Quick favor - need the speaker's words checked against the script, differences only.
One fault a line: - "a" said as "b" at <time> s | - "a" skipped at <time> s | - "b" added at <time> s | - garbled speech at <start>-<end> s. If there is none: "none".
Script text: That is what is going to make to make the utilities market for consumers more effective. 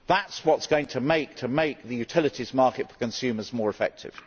none